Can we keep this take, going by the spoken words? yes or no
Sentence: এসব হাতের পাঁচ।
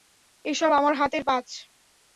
no